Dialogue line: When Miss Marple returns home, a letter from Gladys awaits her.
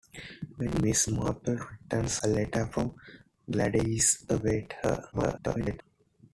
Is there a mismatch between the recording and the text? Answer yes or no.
yes